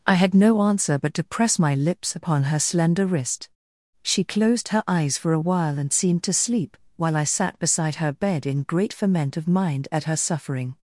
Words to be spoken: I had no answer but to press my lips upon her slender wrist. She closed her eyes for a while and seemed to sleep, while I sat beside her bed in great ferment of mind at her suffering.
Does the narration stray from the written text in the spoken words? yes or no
no